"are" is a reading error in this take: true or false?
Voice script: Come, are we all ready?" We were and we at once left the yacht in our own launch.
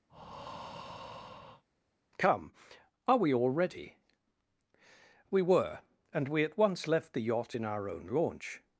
false